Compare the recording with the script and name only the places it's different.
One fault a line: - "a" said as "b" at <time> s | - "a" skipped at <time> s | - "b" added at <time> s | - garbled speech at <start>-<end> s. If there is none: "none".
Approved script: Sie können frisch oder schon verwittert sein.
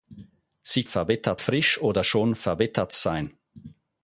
- "können" said as "verwittert" at 0.8 s